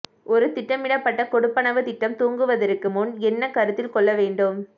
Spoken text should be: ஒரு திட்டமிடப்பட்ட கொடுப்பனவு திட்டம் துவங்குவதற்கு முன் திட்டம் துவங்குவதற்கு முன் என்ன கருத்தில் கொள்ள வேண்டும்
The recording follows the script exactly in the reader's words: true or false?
false